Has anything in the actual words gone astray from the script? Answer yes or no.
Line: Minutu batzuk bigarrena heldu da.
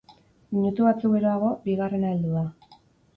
yes